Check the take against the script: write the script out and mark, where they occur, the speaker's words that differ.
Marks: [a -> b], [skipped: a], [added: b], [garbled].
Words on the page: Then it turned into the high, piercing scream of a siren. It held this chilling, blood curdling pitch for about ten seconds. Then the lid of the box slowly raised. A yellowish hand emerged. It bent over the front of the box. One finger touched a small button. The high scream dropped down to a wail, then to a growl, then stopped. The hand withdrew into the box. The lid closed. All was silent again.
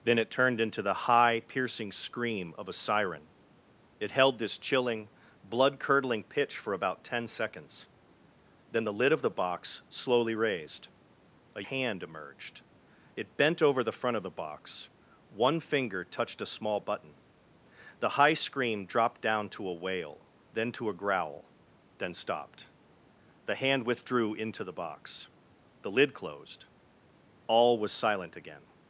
Then it turned into the high, piercing scream of a siren. It held this chilling, blood curdling pitch for about ten seconds. Then the lid of the box slowly raised. A [skipped: yellowish] hand emerged. It bent over the front of the box. One finger touched a small button. The high scream dropped down to a wail, then to a growl, then stopped. The hand withdrew into the box. The lid closed. All was silent again.